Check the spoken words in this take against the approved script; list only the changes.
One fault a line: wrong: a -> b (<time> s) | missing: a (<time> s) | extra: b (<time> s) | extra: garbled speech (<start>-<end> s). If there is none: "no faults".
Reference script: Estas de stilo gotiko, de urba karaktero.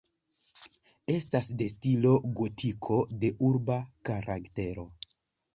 no faults